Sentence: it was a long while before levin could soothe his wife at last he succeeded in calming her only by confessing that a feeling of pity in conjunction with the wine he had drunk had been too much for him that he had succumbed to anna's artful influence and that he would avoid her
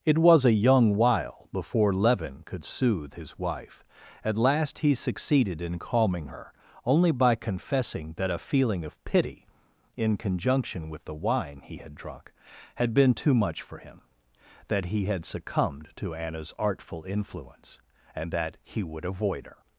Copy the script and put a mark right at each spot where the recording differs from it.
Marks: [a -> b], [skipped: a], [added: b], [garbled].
it was a [long -> young] while before levin could soothe his wife at last he succeeded in calming her only by confessing that a feeling of pity in conjunction with the wine he had drunk had been too much for him that he had succumbed to anna's artful influence and that he would avoid her